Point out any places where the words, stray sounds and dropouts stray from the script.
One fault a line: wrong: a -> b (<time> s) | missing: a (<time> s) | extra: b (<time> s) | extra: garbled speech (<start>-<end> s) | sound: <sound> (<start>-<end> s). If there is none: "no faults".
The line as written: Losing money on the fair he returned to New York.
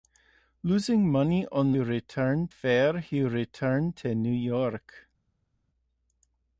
wrong: the -> returned (1.8 s)